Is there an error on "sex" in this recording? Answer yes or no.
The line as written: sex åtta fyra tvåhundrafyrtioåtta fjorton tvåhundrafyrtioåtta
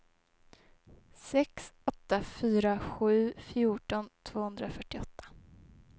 no